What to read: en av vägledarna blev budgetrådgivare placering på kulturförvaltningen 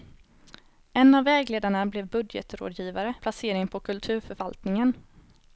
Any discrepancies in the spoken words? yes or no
no